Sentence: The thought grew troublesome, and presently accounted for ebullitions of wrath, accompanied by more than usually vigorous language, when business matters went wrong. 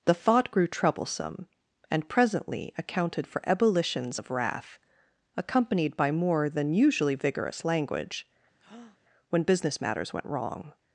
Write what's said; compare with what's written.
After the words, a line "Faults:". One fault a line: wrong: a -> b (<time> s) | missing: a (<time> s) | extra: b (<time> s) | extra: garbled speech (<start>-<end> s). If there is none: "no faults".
The thought grew troublesome, and presently accounted for ebullitions of wrath, accompanied by more than usually vigorous language, when business matters went wrong.
Faults:
no faults